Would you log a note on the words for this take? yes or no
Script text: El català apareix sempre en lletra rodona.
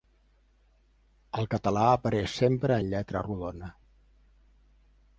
no